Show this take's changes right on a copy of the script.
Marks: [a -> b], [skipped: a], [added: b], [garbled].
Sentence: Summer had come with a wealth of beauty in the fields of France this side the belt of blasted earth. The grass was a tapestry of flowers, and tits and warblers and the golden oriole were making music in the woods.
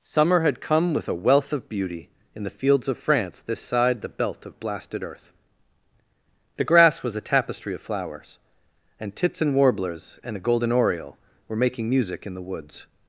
Summer had come with a wealth of beauty in the fields of France this side the belt of blasted earth. The grass was a tapestry of flowers, and tits and warblers and the golden oriole were making music in the woods.